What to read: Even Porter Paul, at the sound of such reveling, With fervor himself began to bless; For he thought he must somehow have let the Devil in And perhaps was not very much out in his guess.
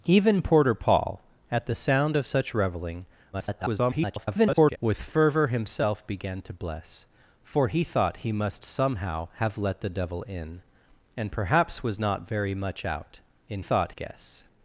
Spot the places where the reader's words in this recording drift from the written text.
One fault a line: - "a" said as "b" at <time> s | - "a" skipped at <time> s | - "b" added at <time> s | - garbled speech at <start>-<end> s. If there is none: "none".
- garbled speech at 3.3-4.8 s
- "his" said as "thought" at 13.6 s